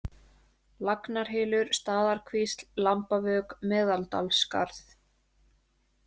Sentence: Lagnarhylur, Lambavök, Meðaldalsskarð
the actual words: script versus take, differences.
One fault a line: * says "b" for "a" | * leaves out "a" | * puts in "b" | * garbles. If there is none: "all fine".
* puts in "Staðarkvísl"